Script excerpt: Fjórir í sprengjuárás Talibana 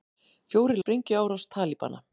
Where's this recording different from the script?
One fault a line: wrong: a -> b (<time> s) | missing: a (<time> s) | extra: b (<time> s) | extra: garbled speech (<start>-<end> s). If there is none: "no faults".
no faults